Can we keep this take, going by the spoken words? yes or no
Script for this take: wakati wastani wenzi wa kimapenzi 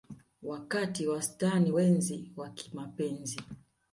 yes